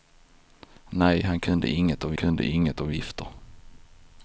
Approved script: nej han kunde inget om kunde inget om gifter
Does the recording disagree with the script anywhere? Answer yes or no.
no